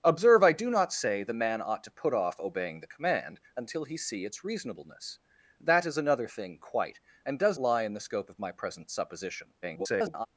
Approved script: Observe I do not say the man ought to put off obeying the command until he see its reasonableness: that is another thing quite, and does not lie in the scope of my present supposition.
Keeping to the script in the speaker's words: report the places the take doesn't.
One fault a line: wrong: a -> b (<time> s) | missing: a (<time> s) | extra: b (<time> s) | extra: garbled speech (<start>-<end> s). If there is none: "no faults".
missing: not (7.6 s)
extra: garbled speech (9.6-10.3 s)